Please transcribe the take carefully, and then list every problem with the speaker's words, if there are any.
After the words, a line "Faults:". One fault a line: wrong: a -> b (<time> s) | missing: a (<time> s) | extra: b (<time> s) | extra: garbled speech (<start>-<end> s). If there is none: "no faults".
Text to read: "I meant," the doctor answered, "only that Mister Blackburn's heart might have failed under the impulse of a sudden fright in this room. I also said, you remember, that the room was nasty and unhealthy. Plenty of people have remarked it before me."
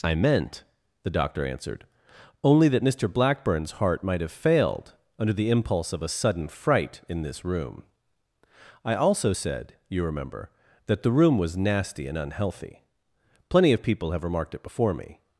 "I meant," the doctor answered, "only that Mister Blackburn's heart might have failed under the impulse of a sudden fright in this room. I also said, you remember, that the room was nasty and unhealthy. Plenty of people have remarked it before me."
Faults:
no faults